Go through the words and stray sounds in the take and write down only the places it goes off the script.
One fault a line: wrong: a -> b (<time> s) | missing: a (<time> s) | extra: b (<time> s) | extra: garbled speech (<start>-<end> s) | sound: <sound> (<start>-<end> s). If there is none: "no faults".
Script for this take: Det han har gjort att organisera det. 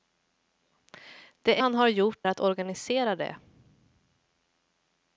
no faults